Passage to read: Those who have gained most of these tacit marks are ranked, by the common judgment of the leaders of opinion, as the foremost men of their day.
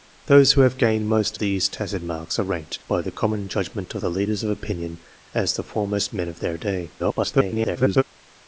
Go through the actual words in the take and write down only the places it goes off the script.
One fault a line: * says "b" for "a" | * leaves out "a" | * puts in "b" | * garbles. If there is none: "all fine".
* leaves out "of"
* garbles